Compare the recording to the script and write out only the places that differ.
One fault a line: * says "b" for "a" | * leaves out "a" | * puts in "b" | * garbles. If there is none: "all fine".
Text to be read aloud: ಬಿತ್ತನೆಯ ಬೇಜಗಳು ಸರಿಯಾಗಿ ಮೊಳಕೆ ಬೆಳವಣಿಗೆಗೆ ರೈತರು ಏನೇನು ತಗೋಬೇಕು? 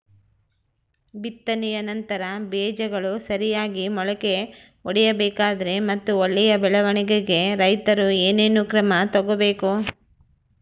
* puts in "ನಂತರ"
* puts in "ಒಡಿಬೇಕಾದರೆ ಮತ್ತು ಒಳ್ಳೆಯ"
* puts in "ಕ್ರಮ"